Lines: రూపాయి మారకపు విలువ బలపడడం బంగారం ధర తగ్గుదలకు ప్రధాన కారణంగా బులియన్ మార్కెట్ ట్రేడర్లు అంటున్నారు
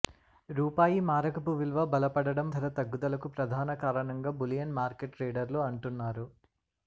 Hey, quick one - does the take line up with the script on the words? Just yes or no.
no